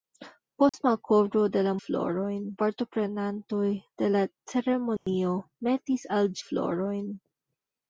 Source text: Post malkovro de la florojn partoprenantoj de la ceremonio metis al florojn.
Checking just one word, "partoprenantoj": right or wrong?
right